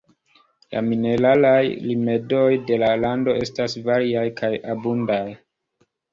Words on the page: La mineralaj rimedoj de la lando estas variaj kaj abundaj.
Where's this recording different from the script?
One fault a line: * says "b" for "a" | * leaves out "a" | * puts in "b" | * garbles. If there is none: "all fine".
all fine